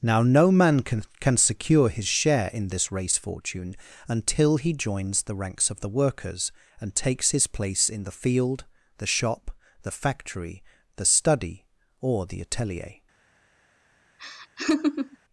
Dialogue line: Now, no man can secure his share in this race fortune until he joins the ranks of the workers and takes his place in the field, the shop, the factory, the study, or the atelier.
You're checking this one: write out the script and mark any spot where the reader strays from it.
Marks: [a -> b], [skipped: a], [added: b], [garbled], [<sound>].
Now, no man can [added: can] secure his share in this race fortune until he joins the ranks of the workers and takes his place in the field, the shop, the factory, the study, or the atelier. [laugh]